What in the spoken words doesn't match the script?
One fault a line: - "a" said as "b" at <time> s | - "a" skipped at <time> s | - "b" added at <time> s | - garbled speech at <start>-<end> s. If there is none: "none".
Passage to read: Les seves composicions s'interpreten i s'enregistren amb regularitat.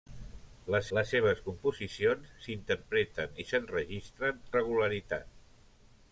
- "les" added at 1.0 s
- "amb" skipped at 4.4 s